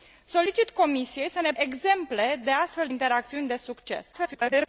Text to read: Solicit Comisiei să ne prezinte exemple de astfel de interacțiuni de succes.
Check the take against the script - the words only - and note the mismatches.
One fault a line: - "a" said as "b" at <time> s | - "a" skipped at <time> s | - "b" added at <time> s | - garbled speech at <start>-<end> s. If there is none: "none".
- "prezinte" skipped at 1.5 s
- "de" skipped at 2.9 s
- garbled speech at 4.1-4.7 s